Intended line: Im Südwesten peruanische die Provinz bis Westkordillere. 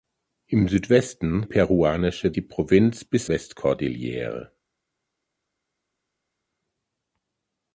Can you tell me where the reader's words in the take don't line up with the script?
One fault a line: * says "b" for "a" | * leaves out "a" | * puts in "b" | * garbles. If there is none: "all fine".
all fine